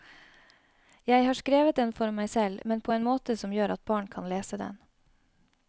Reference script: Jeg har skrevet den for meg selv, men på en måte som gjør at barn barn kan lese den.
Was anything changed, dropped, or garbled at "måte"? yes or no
no